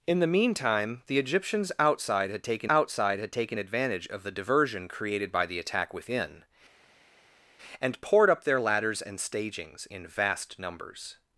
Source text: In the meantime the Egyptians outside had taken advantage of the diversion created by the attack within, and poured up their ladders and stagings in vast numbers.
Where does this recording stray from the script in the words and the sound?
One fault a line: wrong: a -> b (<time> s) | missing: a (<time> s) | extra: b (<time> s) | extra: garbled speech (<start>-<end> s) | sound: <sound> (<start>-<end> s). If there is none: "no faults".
extra: outside had taken (2.7 s)